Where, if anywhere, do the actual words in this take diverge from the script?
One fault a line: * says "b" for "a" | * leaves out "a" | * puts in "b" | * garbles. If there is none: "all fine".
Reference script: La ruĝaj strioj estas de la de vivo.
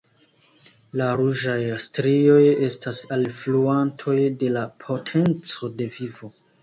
* puts in "alfluantoj"
* puts in "potenco"